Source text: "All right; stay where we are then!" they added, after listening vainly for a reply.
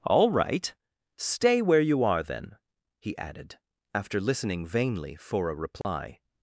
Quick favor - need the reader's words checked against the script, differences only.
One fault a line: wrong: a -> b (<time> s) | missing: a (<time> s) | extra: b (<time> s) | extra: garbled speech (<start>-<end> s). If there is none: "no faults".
wrong: we -> you (1.8 s)
wrong: they -> he (3.0 s)